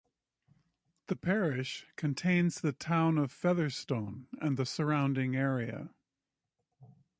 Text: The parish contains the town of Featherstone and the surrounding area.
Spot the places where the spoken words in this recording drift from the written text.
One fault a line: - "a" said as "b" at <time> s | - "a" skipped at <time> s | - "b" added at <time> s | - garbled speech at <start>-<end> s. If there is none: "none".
none